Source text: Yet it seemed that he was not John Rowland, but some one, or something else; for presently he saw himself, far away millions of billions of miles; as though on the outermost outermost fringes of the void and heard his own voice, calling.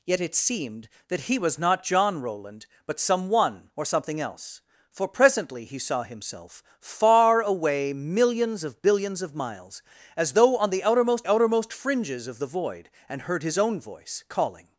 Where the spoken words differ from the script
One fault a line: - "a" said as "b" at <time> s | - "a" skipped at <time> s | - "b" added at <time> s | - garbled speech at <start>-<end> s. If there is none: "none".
none